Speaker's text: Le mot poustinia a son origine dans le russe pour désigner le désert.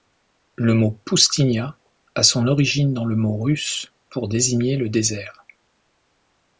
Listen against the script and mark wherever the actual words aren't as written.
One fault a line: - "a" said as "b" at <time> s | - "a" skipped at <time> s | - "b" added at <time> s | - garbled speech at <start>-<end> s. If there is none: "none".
- "mot" added at 3.2 s